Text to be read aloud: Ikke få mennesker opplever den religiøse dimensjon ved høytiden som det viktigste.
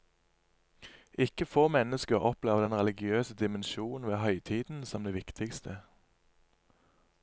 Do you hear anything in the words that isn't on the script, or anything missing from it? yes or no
no